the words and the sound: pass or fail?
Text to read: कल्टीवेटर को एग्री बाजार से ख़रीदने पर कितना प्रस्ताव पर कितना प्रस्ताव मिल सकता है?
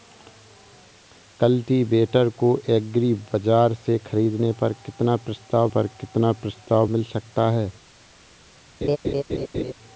fail